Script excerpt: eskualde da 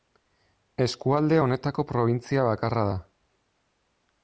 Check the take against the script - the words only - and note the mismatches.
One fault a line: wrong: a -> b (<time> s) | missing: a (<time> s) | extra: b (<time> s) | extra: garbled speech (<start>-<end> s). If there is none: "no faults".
extra: honetako probintzia bakarra (1.4 s)